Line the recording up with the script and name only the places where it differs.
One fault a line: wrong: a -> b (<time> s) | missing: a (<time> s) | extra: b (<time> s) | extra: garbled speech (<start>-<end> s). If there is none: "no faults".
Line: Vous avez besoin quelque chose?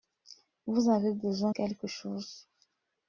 no faults